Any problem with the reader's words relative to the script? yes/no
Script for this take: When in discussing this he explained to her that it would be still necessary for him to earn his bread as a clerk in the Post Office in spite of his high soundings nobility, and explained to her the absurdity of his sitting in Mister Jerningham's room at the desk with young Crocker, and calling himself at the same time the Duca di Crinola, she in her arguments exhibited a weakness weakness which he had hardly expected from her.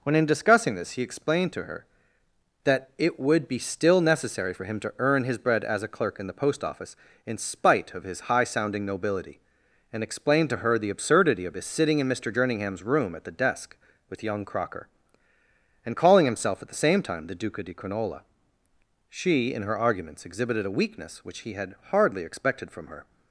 yes